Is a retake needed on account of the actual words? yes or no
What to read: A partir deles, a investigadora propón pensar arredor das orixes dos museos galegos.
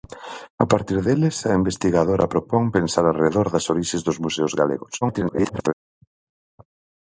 yes